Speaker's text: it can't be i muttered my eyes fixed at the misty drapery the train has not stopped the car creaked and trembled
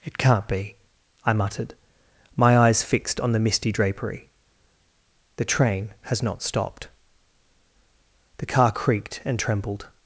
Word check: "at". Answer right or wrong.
wrong